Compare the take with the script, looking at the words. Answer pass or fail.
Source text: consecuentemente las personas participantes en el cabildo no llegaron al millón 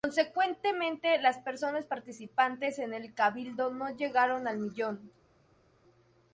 pass